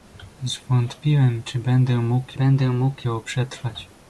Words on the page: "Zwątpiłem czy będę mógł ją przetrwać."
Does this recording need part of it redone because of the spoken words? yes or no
yes